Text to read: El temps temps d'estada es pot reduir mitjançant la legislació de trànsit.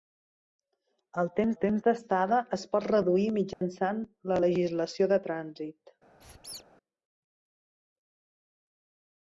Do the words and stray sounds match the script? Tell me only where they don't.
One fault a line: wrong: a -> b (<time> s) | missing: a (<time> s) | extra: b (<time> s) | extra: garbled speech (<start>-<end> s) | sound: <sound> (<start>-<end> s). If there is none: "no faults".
sound: dropout (3.5-3.6 s)
sound: squeak (6.2-6.6 s)